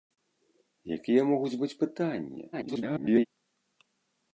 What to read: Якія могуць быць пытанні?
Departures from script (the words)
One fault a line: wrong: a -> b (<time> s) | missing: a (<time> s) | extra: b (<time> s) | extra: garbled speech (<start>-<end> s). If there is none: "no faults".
extra: garbled speech (2.5-3.3 s)